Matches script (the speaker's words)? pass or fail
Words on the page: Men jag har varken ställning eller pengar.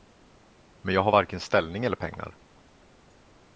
pass